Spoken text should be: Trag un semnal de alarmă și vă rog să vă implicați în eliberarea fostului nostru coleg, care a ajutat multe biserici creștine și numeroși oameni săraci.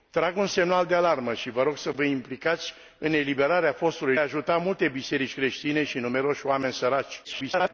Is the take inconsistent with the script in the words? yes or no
yes